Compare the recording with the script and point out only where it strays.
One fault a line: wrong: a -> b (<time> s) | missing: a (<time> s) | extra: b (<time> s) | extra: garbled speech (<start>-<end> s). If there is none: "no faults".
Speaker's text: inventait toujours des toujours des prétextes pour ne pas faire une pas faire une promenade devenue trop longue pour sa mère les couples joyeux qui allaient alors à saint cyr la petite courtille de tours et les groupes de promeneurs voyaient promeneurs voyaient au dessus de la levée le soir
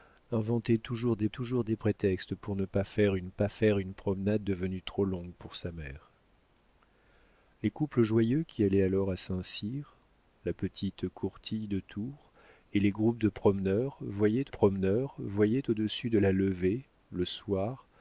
no faults